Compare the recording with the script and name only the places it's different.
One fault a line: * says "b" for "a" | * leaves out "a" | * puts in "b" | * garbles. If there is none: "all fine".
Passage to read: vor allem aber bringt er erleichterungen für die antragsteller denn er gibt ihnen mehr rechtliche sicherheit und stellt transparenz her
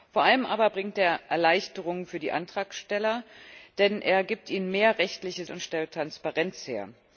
* leaves out "sicherheit"